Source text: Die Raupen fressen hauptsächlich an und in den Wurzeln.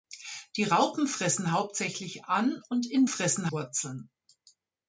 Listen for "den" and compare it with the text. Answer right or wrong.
wrong